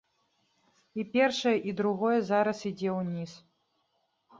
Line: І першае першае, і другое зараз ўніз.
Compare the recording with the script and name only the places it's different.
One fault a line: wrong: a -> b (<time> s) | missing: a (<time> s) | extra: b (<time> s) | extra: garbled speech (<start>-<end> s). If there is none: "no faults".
missing: першае (1.5 s)
extra: ідзе (2.7 s)